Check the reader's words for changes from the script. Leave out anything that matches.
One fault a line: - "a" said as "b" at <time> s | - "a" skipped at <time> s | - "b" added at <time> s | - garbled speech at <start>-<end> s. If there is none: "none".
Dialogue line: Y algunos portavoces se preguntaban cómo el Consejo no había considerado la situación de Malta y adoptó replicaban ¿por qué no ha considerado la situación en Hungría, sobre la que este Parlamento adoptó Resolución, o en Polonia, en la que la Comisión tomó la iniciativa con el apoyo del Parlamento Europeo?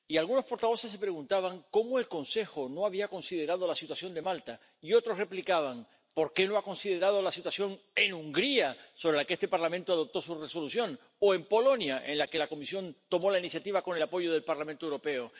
- "adoptó" said as "otros" at 4.9 s
- "su" added at 10.2 s